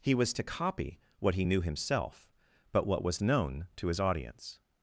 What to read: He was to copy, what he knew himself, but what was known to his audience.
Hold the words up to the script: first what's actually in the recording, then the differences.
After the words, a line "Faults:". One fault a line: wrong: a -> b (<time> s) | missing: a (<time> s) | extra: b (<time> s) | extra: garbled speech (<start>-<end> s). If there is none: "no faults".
He was to copy, what he knew himself, but what was known to his audience.
Faults:
no faults